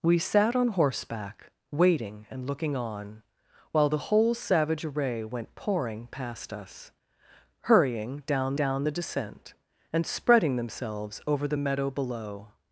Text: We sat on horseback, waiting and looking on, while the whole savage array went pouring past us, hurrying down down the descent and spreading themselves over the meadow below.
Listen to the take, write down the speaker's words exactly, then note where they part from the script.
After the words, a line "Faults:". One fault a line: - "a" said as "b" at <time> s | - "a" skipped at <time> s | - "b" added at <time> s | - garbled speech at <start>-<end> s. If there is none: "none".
We sat on horseback, waiting and looking on, while the whole savage array went pouring past us, hurrying down down the descent and spreading themselves over the meadow below.
Faults:
none